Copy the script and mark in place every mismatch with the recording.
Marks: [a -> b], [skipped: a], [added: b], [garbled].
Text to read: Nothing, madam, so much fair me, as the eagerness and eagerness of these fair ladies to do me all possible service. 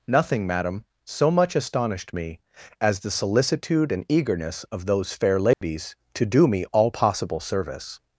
Nothing, madam, so much [fair -> astonished] me, as the [eagerness -> solicitude] and eagerness of [these -> those] fair ladies to do me all possible service.